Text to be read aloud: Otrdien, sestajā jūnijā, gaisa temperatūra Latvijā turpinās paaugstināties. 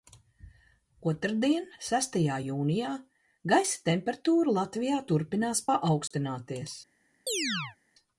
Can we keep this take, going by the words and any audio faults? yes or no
no